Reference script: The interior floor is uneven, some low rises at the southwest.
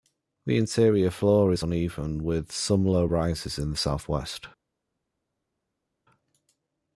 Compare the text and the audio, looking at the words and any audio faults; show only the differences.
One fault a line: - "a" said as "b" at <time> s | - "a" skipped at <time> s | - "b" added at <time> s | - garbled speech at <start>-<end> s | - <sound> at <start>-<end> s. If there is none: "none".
- "with" added at 2.2 s
- "at" said as "in" at 3.6 s